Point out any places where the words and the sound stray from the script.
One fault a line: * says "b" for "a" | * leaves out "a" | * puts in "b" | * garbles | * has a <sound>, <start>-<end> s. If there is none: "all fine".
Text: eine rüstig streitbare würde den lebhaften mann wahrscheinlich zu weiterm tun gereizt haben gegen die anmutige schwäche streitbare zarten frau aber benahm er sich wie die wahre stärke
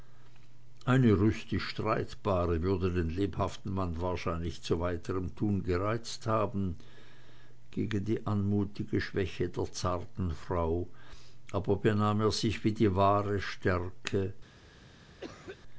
* says "der" for "streitbare"
* has a cough, 15.2-15.6 s